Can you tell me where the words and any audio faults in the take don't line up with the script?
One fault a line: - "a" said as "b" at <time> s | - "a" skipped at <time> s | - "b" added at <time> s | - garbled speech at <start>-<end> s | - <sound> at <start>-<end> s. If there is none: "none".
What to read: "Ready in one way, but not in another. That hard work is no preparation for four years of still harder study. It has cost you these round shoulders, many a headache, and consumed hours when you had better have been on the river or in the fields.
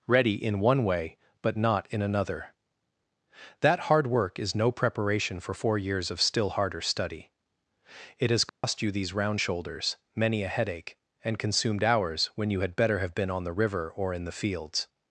- dropout at 8.5-8.6 s